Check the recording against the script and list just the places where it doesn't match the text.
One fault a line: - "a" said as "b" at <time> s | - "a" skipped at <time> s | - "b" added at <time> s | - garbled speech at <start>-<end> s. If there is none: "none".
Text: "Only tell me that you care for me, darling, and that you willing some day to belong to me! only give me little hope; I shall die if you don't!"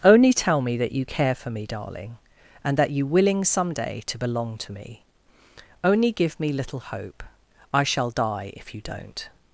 none